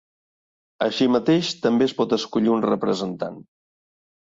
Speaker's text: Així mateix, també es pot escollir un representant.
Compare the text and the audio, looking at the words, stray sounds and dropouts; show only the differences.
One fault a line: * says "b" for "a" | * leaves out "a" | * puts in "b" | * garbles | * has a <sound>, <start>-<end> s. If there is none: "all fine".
all fine